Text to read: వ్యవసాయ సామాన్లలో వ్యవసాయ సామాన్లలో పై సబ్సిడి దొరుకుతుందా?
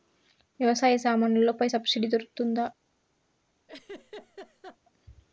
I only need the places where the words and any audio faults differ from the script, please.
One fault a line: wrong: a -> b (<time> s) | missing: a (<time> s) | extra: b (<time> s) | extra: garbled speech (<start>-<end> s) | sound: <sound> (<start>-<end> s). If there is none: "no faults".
missing: వ్యవసాయ సామాన్లలో (1.5 s)
sound: laugh (3.7-4.8 s)